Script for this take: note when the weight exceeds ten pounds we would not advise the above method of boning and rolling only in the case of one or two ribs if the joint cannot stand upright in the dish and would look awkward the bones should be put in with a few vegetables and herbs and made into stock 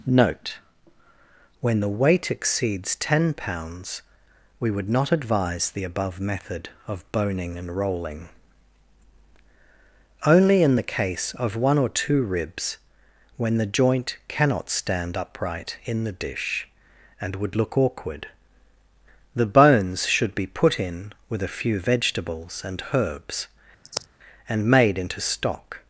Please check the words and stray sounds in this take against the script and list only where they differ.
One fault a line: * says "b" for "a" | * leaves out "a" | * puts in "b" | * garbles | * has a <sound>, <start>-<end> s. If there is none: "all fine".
* says "when" for "if"
* has a sigh, 23.8-24.1 s